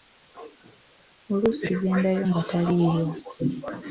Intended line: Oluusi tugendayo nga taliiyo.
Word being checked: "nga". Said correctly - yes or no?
yes